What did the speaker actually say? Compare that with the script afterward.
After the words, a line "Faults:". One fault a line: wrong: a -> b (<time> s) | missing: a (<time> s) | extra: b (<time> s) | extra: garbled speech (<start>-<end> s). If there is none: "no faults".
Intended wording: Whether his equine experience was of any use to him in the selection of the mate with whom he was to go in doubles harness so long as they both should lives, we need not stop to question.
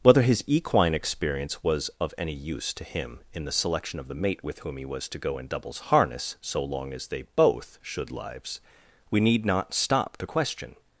Whether his equine experience was of any use to him in the selection of the mate with whom he was to go in doubles harness so long as they both should lives, we need not stop to question.
Faults:
no faults